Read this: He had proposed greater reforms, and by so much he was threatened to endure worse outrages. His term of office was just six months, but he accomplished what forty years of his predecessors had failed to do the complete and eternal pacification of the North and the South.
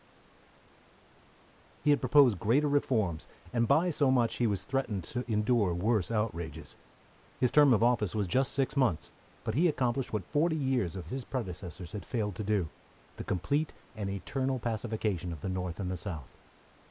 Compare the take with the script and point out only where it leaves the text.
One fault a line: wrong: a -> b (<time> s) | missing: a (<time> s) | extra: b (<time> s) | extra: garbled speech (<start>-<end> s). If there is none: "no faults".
no faults